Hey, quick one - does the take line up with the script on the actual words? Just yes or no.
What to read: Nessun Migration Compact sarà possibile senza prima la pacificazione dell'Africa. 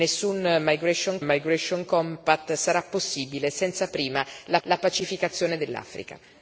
no